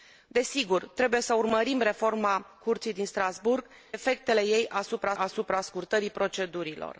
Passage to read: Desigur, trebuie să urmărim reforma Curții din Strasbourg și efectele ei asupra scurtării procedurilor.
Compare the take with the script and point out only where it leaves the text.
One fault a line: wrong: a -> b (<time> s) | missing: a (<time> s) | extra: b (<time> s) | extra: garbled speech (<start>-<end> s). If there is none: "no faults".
missing: și (3.6 s)
extra: asupra (5.1 s)